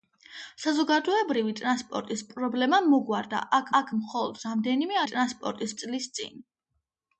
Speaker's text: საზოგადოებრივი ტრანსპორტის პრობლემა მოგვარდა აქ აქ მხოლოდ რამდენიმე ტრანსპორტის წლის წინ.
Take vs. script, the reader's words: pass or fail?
pass